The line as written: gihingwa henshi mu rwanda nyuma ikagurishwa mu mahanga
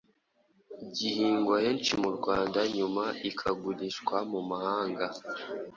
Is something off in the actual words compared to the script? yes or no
no